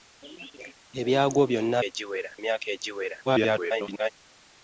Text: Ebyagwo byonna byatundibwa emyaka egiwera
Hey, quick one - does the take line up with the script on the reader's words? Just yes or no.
no